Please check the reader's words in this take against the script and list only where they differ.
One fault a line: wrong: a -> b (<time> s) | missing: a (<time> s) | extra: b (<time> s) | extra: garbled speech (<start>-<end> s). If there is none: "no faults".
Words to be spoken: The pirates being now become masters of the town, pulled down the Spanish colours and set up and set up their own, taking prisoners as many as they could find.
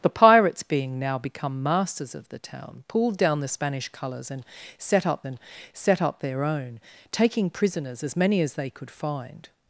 no faults